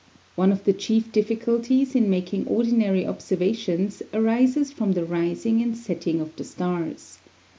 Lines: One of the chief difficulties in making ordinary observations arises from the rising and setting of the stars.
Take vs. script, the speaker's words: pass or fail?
pass